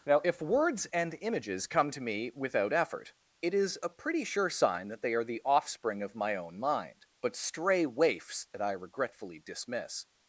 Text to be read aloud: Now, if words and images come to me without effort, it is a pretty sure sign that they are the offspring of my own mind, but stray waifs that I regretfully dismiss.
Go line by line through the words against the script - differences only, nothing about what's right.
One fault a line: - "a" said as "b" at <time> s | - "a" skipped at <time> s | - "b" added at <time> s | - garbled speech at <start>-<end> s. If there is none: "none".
none